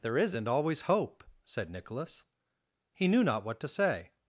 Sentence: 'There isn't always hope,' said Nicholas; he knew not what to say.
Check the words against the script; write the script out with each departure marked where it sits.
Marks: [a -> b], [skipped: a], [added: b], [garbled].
'There isn't always hope,' said Nicholas; he knew not what to say.